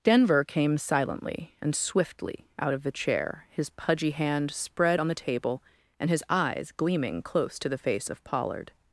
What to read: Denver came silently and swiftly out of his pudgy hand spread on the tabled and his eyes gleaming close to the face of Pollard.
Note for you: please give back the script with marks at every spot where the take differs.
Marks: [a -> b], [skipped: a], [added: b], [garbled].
Denver came silently and swiftly out of [added: the chair] his pudgy hand spread on the [tabled -> table] and his eyes gleaming close to the face of Pollard.